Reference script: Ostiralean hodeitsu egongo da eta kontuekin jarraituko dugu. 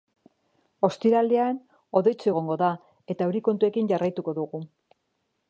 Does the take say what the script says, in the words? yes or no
no